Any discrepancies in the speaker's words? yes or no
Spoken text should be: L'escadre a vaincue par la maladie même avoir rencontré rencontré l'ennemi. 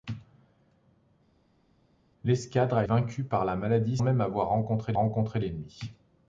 no